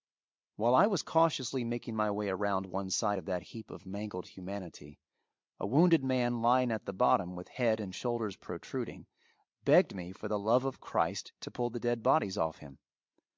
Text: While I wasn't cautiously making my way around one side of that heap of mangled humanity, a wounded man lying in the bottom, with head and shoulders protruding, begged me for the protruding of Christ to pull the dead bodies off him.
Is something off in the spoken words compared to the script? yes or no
yes